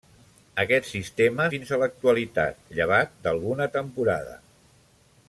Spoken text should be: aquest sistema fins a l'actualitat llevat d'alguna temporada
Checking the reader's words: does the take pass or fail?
pass